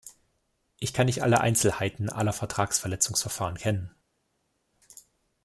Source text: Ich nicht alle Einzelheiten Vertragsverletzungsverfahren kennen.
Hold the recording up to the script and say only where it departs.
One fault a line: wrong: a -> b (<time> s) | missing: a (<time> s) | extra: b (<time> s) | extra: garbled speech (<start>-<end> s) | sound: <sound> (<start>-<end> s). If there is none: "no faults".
extra: kann (0.9 s)
extra: aller (2.1 s)